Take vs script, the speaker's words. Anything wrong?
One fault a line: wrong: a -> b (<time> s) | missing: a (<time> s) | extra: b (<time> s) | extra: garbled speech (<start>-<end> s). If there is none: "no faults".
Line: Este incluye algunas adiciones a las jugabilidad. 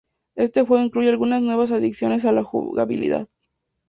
extra: juego (0.7 s)
extra: nuevas (1.4 s)
wrong: las -> la (2.3 s)